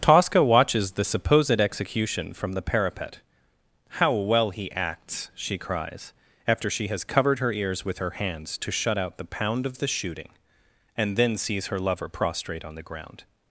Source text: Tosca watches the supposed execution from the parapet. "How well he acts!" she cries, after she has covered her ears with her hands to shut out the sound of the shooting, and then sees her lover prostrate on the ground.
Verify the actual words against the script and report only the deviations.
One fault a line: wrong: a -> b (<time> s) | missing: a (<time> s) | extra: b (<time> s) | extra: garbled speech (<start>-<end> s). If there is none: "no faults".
wrong: sound -> pound (9.2 s)